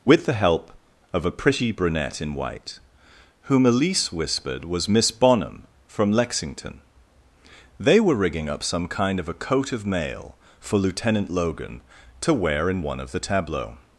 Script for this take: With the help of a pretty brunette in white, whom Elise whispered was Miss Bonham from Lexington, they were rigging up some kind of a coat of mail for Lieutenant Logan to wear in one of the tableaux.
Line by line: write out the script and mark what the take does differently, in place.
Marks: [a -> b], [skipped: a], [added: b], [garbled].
With the help of a pretty brunette in white, whom Elise whispered was Miss Bonham from Lexington, they were rigging up some kind of a coat of mail for Lieutenant Logan to wear in one of the tableaux.